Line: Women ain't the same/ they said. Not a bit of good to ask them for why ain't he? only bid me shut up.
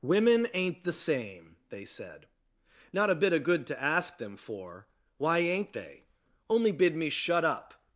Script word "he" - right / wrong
wrong